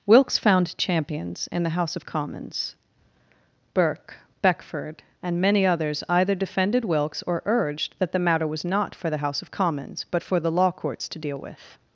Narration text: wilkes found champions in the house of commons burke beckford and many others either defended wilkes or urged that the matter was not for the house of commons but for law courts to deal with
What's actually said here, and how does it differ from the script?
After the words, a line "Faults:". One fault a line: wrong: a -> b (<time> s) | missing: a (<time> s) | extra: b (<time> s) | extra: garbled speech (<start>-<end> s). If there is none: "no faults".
wilkes found champions in the house of commons burke beckford and many others either defended wilkes or urged that the matter was not for the house of commons but for the law courts to deal with
Faults:
extra: the (10.4 s)